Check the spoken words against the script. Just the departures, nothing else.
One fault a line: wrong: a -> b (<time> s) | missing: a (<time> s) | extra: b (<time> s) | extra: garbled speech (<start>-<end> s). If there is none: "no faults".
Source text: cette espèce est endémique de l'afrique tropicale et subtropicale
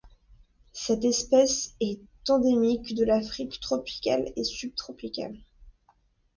no faults